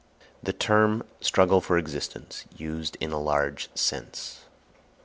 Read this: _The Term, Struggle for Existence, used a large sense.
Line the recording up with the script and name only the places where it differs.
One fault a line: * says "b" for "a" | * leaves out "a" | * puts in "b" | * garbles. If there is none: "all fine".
* puts in "in"